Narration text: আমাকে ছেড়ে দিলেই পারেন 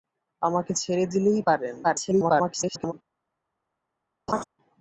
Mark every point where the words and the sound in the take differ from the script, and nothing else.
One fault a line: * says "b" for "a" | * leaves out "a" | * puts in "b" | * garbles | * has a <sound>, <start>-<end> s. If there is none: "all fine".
* garbles
* has a laugh, 4.3-4.4 s